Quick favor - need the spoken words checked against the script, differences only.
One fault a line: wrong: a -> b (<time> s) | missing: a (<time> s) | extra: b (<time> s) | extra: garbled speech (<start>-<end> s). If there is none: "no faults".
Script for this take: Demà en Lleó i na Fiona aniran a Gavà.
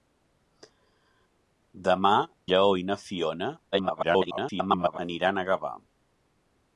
missing: en (2.1 s)
extra: garbled speech (3.7-5.0 s)